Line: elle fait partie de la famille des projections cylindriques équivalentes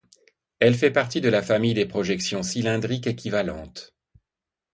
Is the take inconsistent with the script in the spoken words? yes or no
no